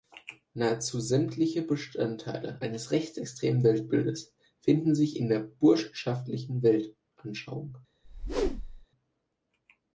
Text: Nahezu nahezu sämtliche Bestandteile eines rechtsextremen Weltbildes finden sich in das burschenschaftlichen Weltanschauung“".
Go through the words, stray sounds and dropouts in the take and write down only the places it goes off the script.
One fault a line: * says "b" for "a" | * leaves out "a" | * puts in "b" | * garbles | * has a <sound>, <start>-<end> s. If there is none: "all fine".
* leaves out "nahezu"
* says "der" for "das"
* has a whoosh, 8.0-8.9 s